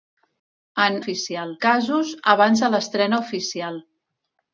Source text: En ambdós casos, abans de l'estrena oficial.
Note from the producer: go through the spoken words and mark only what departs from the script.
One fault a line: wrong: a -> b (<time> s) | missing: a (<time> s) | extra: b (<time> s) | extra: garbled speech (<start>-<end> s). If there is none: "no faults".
wrong: ambdós -> oficial (1.0 s)